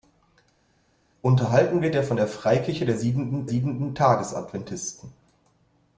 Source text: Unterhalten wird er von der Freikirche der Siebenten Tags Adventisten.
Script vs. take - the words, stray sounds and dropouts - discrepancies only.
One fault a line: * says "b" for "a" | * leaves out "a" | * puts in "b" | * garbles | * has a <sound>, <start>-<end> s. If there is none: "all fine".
* puts in "Siebenten"